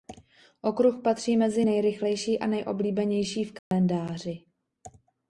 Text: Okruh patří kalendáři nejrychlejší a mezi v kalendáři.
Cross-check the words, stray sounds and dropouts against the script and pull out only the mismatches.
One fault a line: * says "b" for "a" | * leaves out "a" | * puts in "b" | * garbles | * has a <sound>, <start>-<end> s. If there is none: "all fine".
* says "mezi" for "kalendáři"
* says "nejoblíbenější" for "mezi"
* has a dropout, 3.6-3.7 s